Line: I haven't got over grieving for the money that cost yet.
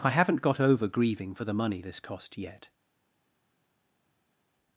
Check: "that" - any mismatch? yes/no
yes